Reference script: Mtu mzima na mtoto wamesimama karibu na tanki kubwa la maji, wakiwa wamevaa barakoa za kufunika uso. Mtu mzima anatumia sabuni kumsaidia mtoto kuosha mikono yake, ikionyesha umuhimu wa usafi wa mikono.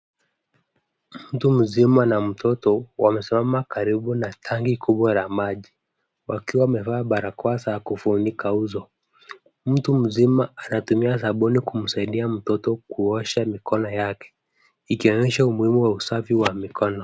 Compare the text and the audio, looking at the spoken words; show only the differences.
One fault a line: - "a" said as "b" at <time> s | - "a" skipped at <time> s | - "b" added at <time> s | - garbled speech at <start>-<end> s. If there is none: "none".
none